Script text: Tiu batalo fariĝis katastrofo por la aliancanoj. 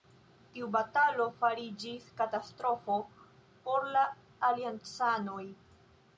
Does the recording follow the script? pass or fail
pass